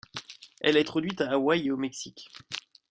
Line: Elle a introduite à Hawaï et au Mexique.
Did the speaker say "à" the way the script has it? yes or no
yes